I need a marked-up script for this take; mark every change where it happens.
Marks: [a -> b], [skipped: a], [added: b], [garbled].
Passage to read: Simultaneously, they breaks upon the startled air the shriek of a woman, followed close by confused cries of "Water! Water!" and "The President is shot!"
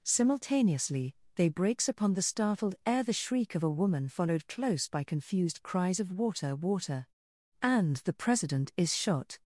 Simultaneously, they breaks upon the startled air the shriek of a woman, followed close by confused cries of "Water! Water!" and "The President is shot!"